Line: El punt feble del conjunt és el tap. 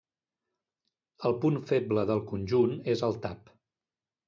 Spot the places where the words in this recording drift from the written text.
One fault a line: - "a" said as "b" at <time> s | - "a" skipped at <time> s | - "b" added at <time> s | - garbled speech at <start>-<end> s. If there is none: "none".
none